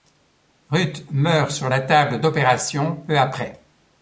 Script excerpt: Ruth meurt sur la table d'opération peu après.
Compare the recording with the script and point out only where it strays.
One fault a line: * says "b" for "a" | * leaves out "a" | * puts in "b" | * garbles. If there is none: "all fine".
all fine